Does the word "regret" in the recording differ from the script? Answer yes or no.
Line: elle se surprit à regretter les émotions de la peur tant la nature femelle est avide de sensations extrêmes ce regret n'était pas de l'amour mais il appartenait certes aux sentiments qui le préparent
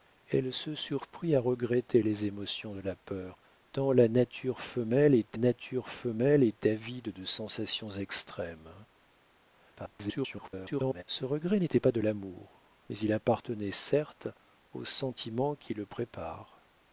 no